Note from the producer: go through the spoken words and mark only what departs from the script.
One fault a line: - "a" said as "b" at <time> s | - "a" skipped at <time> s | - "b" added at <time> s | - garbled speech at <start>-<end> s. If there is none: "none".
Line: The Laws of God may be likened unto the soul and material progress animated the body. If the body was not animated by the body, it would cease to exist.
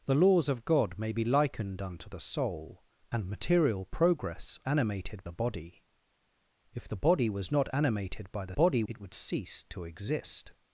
none